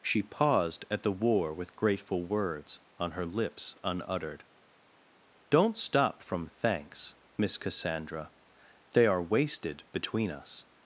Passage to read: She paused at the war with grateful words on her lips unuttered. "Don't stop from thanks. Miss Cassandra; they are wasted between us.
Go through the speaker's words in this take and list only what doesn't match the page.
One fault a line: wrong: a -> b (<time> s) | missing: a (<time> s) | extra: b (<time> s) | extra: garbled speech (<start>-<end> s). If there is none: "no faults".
no faults